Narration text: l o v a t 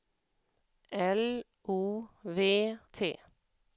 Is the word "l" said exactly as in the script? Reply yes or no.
yes